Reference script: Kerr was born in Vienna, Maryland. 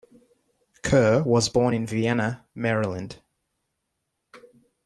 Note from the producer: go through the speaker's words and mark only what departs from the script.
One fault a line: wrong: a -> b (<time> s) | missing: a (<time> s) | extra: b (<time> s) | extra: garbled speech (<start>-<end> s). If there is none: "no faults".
no faults